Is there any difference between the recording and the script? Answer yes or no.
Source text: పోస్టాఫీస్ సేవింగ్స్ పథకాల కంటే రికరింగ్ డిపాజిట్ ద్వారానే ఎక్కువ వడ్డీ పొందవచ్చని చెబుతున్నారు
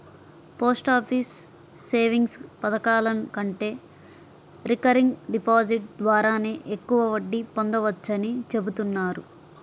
no